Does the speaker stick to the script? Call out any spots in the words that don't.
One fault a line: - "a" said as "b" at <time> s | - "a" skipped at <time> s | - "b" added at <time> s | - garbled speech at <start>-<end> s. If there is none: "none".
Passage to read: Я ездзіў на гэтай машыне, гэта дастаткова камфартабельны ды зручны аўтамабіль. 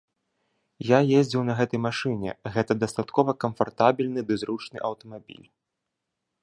none